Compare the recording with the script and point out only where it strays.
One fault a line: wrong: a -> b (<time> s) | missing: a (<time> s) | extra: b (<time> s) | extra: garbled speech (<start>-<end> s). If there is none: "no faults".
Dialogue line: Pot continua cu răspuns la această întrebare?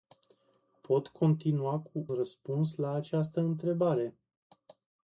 no faults